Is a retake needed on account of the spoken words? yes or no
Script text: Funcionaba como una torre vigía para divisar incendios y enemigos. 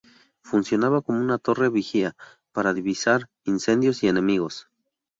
no